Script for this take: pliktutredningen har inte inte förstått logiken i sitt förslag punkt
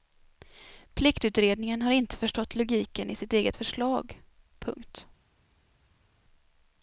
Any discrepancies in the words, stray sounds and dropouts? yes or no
yes